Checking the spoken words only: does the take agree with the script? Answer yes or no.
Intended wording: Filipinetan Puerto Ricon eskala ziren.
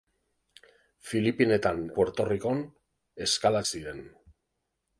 yes